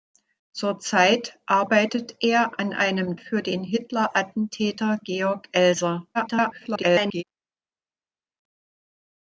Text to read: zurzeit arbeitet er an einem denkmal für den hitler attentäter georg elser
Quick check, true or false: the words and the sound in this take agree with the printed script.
false